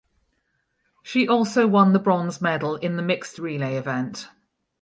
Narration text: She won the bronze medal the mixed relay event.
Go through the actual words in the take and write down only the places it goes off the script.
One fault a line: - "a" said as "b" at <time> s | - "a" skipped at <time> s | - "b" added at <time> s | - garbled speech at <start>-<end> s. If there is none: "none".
- "also" added at 1.3 s
- "in" added at 2.8 s